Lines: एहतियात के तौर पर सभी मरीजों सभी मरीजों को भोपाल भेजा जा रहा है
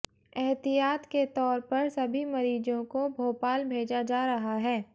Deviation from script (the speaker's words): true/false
true